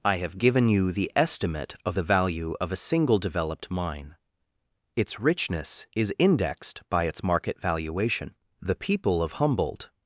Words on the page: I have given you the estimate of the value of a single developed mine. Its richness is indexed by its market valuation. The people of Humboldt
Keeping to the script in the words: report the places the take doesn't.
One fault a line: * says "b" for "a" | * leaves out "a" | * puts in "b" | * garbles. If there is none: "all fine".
all fine